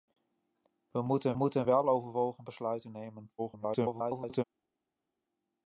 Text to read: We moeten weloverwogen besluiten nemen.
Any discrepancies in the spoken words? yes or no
yes